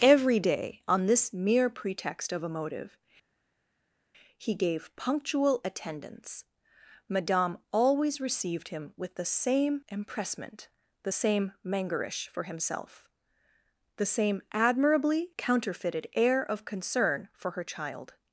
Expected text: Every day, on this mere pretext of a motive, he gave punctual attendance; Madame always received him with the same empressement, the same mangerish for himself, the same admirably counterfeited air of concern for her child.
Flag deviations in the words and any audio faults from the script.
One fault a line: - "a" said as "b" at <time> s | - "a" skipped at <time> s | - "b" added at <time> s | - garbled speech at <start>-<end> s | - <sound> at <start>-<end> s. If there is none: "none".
none